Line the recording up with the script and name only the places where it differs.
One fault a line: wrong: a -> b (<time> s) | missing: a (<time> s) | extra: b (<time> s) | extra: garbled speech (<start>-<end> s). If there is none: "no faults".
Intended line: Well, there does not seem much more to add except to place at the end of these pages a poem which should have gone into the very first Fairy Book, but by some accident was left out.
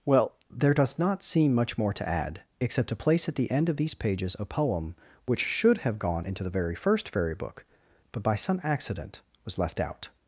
no faults